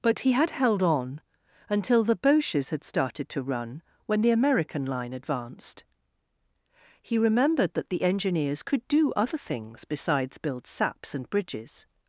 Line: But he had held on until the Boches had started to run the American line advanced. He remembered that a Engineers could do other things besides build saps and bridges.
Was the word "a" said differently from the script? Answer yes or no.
yes